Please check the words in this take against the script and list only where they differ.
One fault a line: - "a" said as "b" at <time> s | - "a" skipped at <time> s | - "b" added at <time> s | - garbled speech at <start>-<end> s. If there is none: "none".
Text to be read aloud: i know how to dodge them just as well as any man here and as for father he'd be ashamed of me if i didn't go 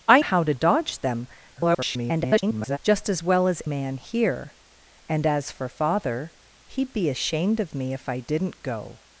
- "know" skipped at 0.2 s
- garbled speech at 1.5-2.8 s
- "any" skipped at 3.6 s